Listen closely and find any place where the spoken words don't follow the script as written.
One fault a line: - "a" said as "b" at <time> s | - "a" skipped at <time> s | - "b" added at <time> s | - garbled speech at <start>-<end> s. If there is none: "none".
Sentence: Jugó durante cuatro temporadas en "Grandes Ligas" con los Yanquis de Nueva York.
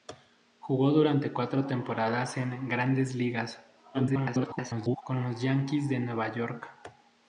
- garbled speech at 3.9-5.0 s